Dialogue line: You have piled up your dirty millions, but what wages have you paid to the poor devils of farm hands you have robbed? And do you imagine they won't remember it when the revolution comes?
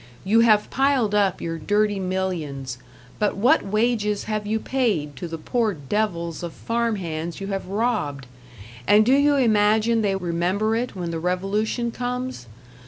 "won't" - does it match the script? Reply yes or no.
no